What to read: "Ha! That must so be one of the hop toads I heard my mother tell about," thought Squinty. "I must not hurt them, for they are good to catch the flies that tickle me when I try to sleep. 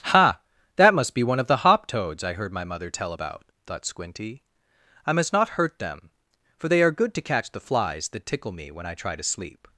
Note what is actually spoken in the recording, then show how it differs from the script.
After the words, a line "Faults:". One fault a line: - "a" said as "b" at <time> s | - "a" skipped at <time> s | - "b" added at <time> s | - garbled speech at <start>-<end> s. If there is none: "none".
"Ha! That must be one of the hop toads I heard my mother tell about," thought Squinty. "I must not hurt them, for they are good to catch the flies that tickle me when I try to sleep.
Faults:
- "so" skipped at 1.1 s